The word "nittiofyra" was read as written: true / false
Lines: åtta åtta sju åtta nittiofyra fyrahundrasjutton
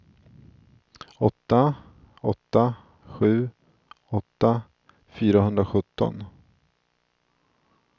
false